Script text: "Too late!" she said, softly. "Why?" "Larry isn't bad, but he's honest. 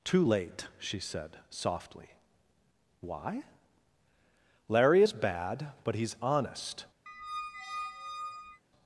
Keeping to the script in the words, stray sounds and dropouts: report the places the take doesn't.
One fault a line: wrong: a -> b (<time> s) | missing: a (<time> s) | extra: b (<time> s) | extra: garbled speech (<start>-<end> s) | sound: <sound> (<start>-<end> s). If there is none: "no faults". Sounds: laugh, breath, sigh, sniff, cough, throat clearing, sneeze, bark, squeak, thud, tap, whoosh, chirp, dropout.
wrong: isn't -> is (5.0 s)
sound: squeak (7.1-8.6 s)